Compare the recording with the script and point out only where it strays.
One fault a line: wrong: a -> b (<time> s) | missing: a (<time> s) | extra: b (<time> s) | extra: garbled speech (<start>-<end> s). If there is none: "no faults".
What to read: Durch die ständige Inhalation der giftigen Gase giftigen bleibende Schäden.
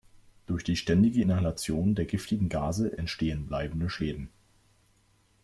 wrong: giftigen -> entstehen (3.0 s)